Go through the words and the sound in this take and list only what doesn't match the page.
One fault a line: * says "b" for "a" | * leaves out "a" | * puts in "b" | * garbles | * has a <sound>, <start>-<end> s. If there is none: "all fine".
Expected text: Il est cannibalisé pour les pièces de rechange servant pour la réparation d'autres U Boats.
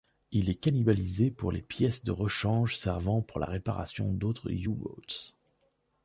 all fine